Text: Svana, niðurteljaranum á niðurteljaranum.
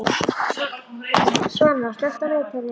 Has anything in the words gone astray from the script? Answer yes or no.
yes